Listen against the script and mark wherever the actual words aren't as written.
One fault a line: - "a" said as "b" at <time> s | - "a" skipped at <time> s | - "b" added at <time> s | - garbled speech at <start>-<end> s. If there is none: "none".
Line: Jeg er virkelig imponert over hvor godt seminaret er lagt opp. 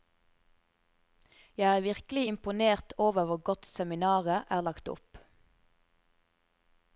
none